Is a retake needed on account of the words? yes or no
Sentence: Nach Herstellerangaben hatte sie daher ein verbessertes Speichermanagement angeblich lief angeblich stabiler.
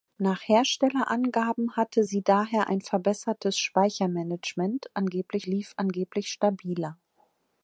no